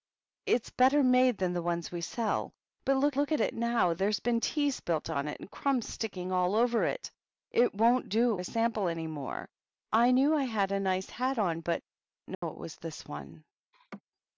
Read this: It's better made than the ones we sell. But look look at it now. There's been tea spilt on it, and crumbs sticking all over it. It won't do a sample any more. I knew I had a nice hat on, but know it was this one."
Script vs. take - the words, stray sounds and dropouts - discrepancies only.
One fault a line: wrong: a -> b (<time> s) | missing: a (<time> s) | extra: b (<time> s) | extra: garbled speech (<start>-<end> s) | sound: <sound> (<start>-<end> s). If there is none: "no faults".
sound: dropout (12.3-12.4 s)
sound: laugh (13.7-14.0 s)